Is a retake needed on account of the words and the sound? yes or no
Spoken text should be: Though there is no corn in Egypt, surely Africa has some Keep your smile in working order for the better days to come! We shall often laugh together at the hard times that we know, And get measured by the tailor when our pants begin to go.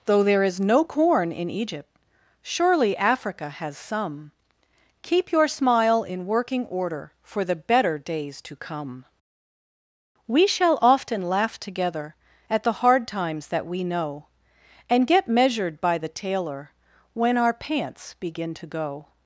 no